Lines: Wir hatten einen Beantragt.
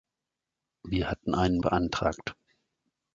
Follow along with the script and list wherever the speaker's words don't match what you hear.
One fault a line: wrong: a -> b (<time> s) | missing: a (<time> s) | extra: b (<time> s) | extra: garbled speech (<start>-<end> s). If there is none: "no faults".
no faults